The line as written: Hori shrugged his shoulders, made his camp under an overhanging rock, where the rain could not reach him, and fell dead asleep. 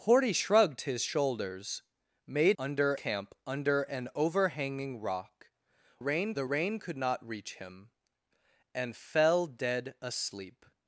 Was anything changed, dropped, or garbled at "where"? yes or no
yes